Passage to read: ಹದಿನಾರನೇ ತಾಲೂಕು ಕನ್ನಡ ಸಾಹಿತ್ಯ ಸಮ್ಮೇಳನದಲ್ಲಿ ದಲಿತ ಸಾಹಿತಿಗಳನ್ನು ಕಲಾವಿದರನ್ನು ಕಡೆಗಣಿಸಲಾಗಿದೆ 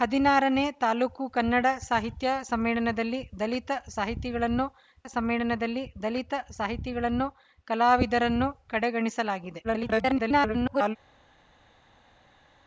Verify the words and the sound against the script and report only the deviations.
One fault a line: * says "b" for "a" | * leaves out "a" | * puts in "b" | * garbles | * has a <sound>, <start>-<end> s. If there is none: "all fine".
* puts in "ಸಮ್ಮೇಳನದಲ್ಲಿ ದಲಿತ ಸಾಹಿತಿಗಳನ್ನು"
* garbles